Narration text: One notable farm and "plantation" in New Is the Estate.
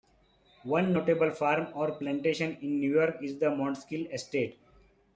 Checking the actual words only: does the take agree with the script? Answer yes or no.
no